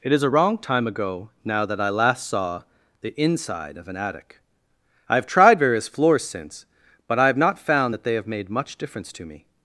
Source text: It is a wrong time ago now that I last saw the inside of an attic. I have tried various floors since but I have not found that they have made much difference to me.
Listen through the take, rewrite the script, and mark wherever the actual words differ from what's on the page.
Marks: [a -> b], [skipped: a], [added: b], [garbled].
It is a wrong time ago now that I last saw the inside of an attic. I have tried various floors since but I have not found that they have made much difference to me.